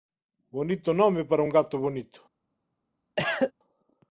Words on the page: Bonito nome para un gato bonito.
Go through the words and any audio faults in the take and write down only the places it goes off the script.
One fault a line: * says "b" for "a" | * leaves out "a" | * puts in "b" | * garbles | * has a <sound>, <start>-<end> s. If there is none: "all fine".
* has a cough, 3.2-3.5 s